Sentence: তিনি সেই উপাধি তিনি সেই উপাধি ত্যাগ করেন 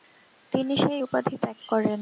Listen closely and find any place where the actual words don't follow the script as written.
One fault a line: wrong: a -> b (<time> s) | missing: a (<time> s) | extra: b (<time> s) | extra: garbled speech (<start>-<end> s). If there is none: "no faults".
missing: তিনি সেই উপাধি (1.4 s)